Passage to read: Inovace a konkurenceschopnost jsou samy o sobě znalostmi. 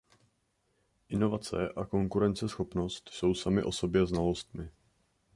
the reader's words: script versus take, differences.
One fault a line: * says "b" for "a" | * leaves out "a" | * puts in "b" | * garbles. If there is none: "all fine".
all fine